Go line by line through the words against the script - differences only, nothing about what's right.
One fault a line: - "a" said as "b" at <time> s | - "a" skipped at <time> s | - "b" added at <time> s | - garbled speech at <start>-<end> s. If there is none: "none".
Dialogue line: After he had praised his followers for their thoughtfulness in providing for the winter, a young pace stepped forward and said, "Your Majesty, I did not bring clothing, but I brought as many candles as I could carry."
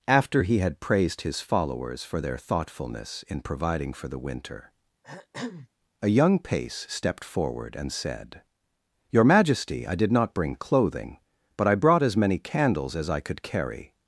none